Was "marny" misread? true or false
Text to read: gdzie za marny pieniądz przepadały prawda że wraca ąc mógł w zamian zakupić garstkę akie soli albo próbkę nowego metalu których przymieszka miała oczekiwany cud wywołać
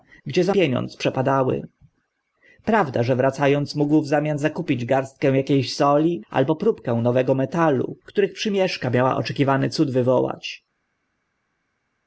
true